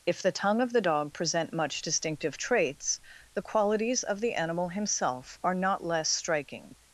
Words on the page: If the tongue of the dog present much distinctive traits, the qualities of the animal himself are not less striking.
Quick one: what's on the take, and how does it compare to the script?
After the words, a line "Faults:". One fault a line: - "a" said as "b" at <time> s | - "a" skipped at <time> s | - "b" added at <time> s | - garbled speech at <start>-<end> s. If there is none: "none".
If the tongue of the dog present much distinctive traits, the qualities of the animal himself are not less striking.
Faults:
none